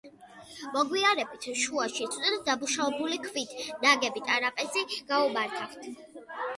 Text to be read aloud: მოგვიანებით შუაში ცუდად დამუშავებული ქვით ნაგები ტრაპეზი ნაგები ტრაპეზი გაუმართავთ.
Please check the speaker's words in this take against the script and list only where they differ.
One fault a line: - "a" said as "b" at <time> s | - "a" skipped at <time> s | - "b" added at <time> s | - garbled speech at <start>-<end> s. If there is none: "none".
- "ნაგები ტრაპეზი" skipped at 4.9 s